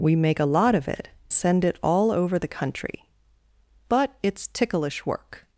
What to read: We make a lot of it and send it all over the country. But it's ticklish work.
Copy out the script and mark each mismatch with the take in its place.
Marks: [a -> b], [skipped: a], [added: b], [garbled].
We make a lot of it [skipped: and] send it all over the country. But it's ticklish work.